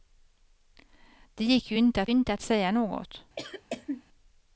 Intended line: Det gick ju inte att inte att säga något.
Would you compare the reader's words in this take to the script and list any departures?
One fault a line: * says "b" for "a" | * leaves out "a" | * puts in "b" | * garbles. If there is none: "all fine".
all fine